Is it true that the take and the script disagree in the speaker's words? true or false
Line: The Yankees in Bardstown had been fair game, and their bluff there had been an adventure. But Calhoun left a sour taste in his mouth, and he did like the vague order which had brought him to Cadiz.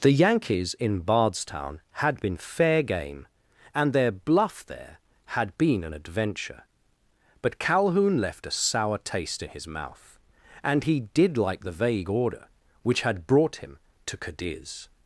false